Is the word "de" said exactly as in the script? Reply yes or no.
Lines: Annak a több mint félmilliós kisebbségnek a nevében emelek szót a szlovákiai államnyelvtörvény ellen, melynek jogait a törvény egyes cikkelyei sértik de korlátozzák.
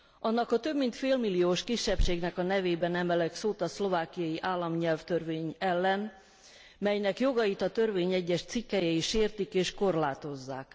no